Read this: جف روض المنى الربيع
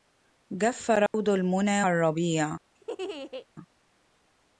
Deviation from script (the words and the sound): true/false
true